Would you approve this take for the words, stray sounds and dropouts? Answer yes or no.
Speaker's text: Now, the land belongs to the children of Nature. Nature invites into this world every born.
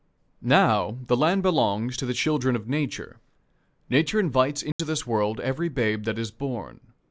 no